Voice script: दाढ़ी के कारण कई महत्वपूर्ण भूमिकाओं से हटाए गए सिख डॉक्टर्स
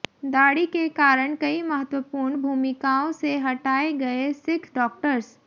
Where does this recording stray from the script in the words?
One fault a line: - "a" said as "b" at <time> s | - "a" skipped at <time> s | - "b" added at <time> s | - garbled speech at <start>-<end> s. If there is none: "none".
none